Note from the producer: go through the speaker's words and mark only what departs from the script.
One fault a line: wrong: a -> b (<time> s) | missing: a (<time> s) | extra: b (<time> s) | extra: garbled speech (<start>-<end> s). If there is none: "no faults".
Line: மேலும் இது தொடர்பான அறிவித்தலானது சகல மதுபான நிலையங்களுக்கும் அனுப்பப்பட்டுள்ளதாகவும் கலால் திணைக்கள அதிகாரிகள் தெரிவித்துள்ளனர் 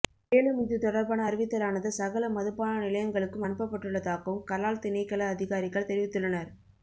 no faults